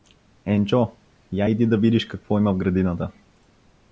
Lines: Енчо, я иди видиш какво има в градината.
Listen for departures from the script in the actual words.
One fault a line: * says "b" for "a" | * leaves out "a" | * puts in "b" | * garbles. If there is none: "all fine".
* puts in "да"